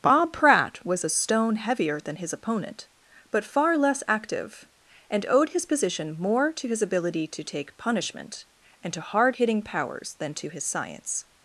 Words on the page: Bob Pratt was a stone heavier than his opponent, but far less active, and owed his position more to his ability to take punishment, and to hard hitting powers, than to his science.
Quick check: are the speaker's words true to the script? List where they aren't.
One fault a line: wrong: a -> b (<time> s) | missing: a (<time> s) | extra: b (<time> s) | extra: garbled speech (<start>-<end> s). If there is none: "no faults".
no faults